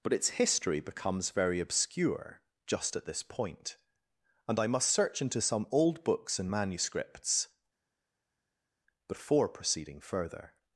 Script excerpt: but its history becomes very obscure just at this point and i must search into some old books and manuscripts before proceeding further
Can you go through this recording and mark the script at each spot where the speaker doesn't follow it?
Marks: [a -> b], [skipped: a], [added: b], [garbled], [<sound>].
but its history becomes very obscure just at this point and i must search into some old books and manuscripts before proceeding further